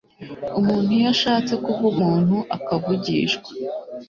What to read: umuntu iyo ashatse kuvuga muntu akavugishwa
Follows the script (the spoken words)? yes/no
yes